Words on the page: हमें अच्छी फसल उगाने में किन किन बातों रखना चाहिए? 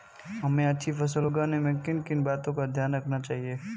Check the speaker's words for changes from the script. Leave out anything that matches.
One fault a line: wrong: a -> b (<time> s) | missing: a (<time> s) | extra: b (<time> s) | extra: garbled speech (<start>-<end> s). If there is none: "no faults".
extra: का ध्यान (2.5 s)